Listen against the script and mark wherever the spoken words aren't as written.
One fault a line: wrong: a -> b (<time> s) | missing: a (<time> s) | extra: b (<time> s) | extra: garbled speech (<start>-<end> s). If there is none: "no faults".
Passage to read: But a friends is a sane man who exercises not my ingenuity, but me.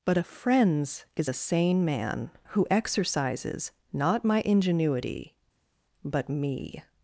no faults